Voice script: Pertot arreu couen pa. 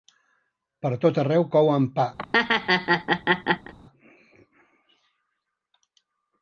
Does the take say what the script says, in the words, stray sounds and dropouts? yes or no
no